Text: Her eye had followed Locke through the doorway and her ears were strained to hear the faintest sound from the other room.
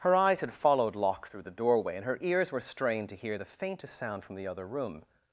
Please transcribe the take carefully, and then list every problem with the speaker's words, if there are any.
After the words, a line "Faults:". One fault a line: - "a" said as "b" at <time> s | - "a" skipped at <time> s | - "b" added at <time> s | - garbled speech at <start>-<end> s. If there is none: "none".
Her eyes had followed Locke through the doorway and her ears were strained to hear the faintest sound from the other room.
Faults:
- "eye" said as "eyes" at 0.1 s